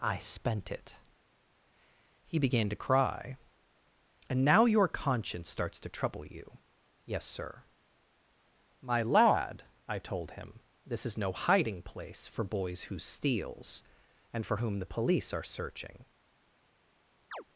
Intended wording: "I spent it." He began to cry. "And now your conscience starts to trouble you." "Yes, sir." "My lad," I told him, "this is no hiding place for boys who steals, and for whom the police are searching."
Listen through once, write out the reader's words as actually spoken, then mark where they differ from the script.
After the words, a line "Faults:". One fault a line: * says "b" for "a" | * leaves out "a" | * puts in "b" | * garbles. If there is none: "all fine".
"I spent it." He began to cry. "And now your conscience starts to trouble you." "Yes, sir." "My lad," I told him, "this is no hiding place for boys who steals, and for whom the police are searching."
Faults:
all fine